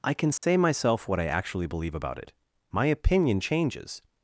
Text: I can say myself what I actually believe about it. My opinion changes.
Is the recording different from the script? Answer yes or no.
no